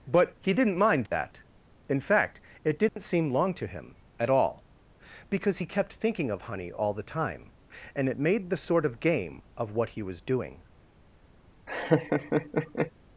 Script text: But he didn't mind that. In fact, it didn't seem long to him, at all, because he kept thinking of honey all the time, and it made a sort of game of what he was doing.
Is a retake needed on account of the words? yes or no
yes